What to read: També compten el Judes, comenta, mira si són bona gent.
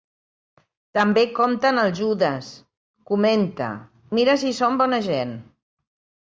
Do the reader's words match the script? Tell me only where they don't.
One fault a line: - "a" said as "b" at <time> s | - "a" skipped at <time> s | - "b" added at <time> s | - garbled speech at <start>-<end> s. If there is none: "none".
none